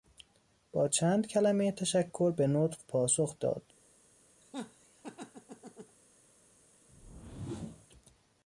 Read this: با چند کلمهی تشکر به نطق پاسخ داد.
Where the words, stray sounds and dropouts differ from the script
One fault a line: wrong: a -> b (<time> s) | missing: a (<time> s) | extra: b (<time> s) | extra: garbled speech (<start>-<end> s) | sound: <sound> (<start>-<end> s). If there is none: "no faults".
sound: laugh (4.4-6.0 s)
sound: whoosh (6.9-7.9 s)